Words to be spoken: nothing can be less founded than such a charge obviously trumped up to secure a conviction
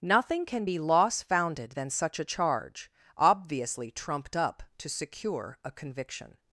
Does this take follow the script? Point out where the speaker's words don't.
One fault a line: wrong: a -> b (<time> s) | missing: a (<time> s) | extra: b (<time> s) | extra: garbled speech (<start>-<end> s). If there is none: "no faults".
wrong: less -> loss (0.8 s)